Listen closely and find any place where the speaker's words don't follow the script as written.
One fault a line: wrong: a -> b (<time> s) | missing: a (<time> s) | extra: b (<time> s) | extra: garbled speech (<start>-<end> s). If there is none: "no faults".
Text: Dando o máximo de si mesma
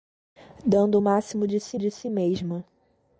extra: de si (1.8 s)